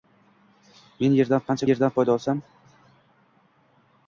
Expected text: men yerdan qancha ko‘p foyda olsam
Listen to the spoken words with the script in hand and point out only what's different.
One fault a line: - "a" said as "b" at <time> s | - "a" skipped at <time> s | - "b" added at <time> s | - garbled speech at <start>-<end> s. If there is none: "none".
- "ko‘p" said as "yerdan" at 1.7 s